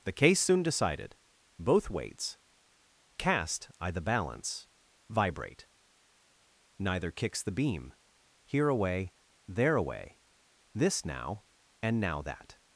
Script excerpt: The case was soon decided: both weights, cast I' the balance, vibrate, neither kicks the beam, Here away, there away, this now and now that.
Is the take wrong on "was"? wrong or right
wrong